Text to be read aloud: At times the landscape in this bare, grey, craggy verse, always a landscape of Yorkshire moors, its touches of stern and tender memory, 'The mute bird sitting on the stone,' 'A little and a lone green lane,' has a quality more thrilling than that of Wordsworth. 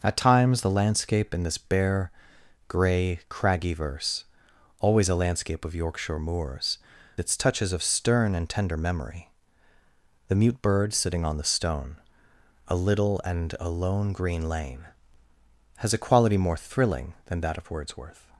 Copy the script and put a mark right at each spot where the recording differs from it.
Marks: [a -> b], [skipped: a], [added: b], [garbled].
At times the landscape in this bare, grey, craggy verse, always a landscape of Yorkshire moors, its touches of stern and tender memory, 'The mute bird sitting on the stone,' 'A little and a lone green lane,' has a quality more thrilling than that of Wordsworth.